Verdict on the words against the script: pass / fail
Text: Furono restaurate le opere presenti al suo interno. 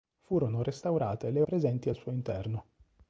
fail